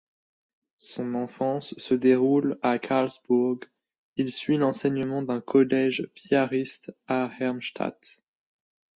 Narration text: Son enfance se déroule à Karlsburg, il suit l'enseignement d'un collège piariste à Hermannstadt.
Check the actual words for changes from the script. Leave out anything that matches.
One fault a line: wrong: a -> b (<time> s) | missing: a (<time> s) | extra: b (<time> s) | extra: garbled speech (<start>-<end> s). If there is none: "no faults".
no faults